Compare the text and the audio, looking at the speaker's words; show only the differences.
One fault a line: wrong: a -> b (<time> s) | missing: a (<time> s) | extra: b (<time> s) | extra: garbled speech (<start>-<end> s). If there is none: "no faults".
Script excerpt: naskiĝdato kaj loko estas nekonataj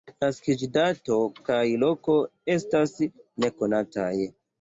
no faults